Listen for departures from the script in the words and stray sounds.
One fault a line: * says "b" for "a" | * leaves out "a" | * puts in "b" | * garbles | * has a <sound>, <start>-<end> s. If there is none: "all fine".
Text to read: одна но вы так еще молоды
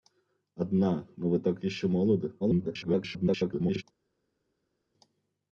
* garbles